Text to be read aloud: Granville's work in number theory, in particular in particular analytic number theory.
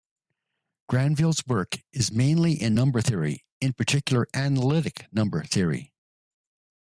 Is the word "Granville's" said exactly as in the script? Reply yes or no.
yes